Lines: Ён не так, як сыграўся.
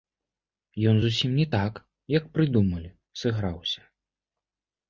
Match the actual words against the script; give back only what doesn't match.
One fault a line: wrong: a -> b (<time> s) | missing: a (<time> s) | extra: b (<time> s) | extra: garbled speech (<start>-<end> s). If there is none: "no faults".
extra: зусім (1.0 s)
extra: прыдумалі (2.4 s)